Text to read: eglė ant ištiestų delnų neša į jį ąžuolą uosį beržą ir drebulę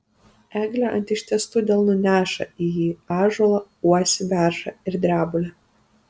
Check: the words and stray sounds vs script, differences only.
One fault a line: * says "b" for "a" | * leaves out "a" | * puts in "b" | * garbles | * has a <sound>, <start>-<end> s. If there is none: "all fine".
all fine